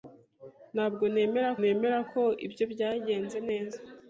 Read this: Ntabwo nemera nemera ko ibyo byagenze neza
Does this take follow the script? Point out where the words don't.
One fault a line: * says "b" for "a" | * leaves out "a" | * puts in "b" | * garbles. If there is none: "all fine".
all fine